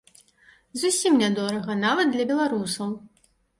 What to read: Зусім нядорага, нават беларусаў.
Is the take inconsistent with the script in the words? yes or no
yes